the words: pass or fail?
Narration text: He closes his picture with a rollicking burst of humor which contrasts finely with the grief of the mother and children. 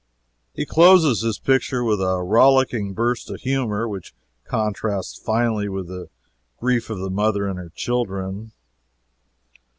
fail